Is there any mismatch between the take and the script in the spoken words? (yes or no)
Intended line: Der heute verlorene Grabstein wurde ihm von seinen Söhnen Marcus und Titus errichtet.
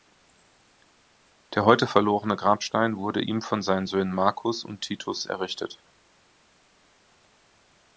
no